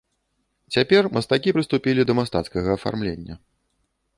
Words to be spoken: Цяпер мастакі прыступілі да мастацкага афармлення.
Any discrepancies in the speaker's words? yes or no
no